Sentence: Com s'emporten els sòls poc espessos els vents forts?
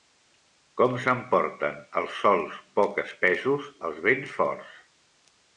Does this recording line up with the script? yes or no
yes